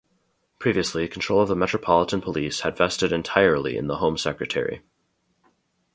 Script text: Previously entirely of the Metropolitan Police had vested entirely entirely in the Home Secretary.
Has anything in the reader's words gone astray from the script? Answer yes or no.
yes